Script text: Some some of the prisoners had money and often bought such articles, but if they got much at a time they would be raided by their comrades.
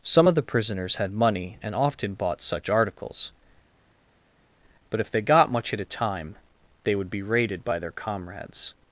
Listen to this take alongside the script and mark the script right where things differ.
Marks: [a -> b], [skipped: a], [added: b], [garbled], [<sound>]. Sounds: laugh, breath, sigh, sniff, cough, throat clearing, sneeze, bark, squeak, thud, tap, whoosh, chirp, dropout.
Some [skipped: some] of the prisoners had money and often bought such articles, but if they got much at a time they would be raided by their comrades.